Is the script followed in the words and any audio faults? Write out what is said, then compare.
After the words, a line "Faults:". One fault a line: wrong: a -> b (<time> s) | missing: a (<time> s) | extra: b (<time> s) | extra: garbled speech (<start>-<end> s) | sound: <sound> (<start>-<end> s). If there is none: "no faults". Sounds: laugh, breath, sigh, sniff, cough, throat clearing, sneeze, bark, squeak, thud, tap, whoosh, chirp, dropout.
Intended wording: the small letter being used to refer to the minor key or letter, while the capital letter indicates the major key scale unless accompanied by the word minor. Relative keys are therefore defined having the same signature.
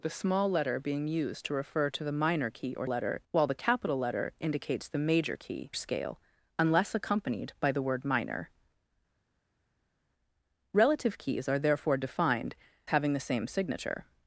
the small letter being used to refer to the minor key or letter, while the capital letter indicates the major key scale unless accompanied by the word minor. Relative keys are therefore defined having the same signature.
Faults:
no faults